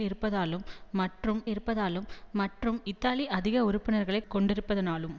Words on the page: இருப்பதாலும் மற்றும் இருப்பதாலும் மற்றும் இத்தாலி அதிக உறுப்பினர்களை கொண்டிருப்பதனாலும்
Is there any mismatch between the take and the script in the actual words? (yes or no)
no